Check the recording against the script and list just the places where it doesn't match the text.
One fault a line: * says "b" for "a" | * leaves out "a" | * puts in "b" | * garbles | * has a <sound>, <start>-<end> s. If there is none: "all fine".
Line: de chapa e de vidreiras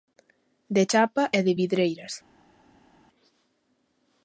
all fine